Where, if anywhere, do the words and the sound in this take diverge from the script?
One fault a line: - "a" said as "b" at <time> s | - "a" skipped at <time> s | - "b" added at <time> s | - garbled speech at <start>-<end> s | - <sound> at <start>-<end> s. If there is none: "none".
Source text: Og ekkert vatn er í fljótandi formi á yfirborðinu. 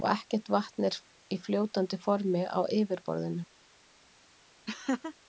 - laugh at 4.7-5.1 s